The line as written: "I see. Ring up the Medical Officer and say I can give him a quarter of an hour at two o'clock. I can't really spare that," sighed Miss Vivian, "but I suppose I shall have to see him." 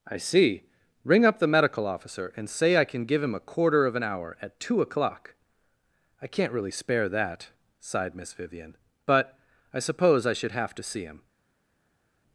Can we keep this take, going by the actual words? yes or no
no